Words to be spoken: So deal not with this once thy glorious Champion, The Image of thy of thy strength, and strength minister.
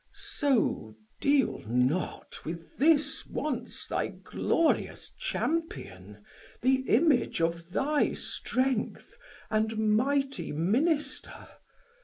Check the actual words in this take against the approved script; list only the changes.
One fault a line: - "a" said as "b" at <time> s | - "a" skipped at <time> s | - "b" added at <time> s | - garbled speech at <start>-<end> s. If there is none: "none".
- "of thy" skipped at 8.1 s
- "strength" said as "mighty" at 9.9 s